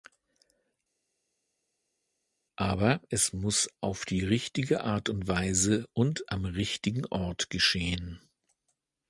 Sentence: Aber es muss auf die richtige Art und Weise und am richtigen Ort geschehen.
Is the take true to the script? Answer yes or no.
yes